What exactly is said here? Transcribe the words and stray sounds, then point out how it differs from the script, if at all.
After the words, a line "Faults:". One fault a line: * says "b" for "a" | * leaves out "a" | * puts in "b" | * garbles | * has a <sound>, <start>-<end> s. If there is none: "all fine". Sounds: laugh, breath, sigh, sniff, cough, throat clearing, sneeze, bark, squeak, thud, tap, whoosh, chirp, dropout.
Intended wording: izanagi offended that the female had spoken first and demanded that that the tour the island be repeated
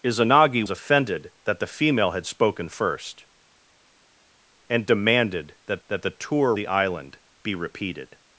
izanagi offended that the female had spoken first and demanded that that the tour the island be repeated
Faults:
all fine